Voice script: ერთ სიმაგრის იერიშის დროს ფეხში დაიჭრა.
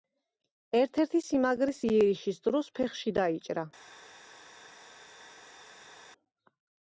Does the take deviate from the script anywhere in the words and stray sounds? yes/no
yes